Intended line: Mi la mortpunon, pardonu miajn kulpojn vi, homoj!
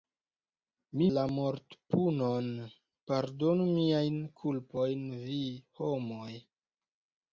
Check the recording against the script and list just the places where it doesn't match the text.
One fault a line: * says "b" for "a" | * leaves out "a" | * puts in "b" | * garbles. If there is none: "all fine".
all fine